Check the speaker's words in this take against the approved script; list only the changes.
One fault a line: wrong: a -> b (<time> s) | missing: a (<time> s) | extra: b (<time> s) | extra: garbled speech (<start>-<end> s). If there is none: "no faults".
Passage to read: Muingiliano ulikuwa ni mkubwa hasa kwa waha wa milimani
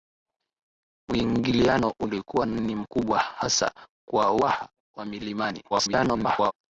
extra: garbled speech (5.7-6.5 s)